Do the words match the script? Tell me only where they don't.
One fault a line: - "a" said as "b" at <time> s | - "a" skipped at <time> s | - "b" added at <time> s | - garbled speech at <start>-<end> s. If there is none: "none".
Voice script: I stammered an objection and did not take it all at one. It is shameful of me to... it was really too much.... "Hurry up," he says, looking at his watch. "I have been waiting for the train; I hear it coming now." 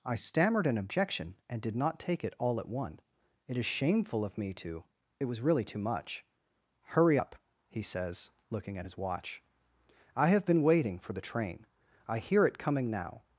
none